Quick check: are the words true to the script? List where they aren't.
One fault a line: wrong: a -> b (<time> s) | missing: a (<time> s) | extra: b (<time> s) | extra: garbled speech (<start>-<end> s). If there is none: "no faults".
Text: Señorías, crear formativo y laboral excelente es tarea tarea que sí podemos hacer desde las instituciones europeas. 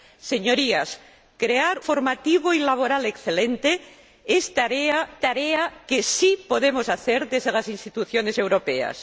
no faults